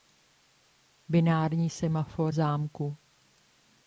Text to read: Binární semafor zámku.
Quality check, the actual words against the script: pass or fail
pass